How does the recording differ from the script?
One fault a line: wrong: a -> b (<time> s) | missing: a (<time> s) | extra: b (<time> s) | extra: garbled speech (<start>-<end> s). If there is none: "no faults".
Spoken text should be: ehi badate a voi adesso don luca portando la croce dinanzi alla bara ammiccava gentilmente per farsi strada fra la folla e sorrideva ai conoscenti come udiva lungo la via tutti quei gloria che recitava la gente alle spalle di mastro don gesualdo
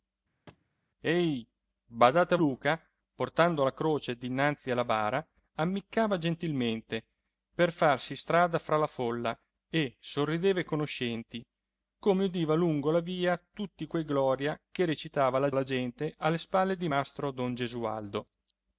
missing: voi adesso don (2.4 s)
extra: la (15.5 s)